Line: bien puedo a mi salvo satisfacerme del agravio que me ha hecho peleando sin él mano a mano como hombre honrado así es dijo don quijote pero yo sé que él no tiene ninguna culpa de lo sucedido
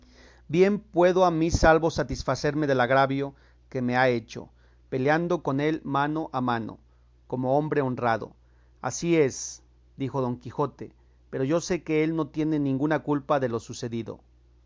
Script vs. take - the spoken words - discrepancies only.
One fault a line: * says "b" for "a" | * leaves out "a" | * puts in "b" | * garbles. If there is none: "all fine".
* says "con" for "sin"